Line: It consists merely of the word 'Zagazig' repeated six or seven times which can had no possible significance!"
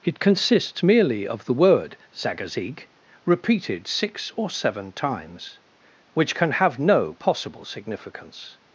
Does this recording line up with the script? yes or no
no